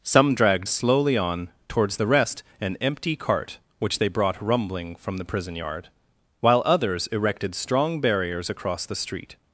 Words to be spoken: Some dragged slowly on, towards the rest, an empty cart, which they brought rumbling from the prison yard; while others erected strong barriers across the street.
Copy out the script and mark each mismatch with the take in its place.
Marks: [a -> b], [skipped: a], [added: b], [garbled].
Some dragged slowly on, towards the rest, an empty cart, which they brought rumbling from the prison yard; while others erected strong barriers across the street.